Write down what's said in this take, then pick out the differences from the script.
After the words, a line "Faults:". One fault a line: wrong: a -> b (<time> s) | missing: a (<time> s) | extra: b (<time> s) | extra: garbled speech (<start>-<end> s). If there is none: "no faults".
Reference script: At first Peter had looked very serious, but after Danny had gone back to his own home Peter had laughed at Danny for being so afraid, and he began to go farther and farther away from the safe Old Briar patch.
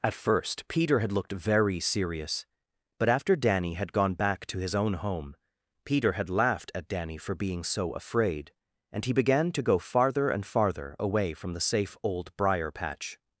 At first Peter had looked very serious, but after Danny had gone back to his own home Peter had laughed at Danny for being so afraid, and he began to go farther and farther away from the safe Old Briar patch.
Faults:
no faults